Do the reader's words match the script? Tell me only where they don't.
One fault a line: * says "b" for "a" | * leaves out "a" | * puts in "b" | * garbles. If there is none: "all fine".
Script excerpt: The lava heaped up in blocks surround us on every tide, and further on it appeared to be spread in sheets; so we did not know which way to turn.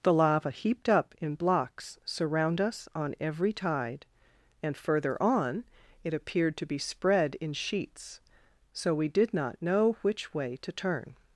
all fine